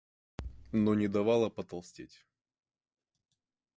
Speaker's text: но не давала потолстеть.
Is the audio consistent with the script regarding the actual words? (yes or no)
yes